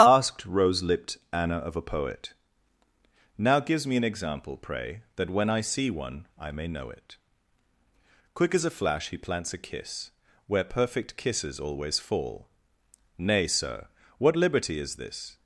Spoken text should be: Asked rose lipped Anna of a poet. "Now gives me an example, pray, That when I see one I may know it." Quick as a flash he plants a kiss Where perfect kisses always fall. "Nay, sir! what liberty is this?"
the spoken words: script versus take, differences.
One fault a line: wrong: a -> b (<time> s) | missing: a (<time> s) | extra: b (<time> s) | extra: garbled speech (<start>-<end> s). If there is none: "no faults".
no faults